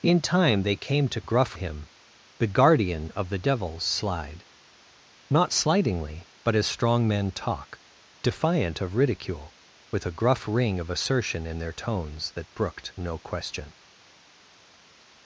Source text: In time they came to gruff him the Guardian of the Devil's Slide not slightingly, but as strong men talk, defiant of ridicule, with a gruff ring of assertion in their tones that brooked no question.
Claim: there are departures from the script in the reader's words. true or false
false